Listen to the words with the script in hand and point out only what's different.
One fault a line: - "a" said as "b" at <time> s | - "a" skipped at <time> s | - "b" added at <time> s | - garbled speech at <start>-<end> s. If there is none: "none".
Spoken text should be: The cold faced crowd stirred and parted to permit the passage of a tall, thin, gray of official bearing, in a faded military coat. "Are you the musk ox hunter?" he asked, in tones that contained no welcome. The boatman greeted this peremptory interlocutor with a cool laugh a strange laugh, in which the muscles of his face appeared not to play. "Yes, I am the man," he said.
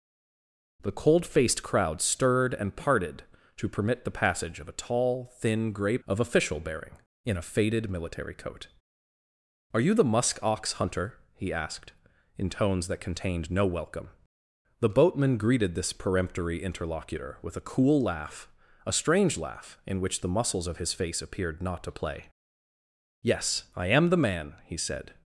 none